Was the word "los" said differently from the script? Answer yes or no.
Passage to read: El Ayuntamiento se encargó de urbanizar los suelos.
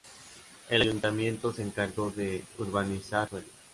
yes